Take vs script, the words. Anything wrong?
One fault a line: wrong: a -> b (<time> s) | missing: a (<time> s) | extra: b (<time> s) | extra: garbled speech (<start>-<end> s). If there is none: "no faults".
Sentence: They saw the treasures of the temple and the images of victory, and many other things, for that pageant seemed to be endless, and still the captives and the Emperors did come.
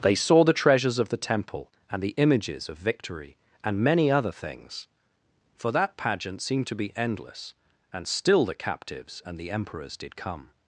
no faults